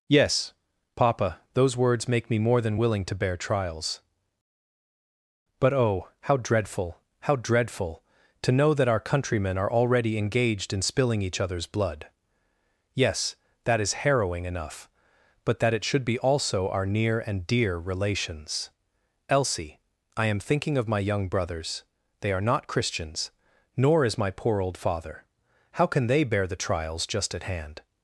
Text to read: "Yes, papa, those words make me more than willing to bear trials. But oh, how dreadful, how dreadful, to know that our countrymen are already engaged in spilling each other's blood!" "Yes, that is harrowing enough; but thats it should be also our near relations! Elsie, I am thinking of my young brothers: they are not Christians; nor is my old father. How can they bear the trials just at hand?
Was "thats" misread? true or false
true